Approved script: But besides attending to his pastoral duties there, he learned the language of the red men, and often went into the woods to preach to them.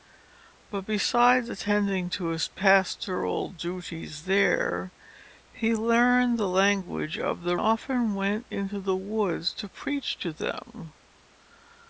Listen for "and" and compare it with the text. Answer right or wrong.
wrong